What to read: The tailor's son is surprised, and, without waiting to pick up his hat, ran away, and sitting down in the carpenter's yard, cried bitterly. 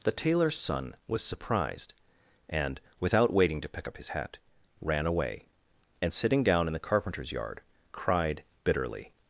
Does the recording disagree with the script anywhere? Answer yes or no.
yes